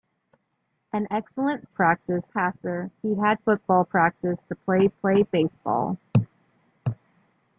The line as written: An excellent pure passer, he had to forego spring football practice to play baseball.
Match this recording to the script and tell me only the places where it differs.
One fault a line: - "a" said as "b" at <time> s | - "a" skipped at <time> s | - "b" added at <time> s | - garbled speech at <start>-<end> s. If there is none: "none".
- "pure" said as "practice" at 1.7 s
- "to forego spring" skipped at 3.4 s
- "play" added at 4.9 s